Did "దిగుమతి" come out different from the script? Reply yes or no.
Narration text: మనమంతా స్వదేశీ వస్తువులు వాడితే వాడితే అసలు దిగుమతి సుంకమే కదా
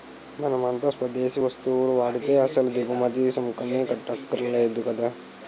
no